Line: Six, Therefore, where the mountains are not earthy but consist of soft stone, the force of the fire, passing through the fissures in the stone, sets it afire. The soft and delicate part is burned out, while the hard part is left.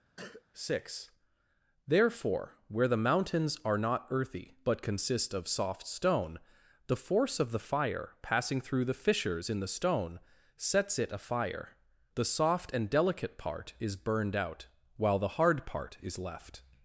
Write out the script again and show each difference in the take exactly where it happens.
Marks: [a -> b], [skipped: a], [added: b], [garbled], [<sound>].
[cough] Six, Therefore, where the mountains are not earthy but consist of soft stone, the force of the fire, passing through the fissures in the stone, sets it afire. The soft and delicate part is burned out, while the hard part is left.